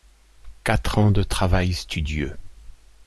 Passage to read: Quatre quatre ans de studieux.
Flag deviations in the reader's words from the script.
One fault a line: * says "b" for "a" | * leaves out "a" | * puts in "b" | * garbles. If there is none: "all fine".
* leaves out "quatre"
* puts in "travail"